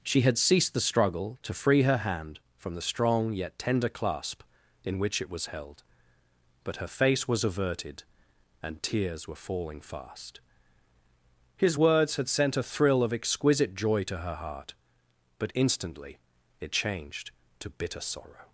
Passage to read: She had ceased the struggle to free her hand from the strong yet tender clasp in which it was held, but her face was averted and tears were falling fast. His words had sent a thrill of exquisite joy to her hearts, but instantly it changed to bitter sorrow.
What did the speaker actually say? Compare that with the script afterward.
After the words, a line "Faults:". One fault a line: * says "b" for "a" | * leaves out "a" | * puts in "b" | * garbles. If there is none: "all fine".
She had ceased the struggle to free her hand from the strong yet tender clasp in which it was held, but her face was averted and tears were falling fast. His words had sent a thrill of exquisite joy to her heart, but instantly it changed to bitter sorrow.
Faults:
* says "heart" for "hearts"